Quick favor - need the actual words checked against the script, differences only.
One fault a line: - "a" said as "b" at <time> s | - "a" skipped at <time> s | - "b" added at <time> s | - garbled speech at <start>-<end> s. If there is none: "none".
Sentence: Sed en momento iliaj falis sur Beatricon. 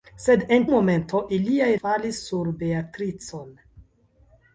none